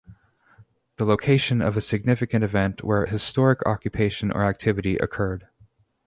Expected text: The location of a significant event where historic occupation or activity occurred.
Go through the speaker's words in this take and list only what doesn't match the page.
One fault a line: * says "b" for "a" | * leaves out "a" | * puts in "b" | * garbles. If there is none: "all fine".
all fine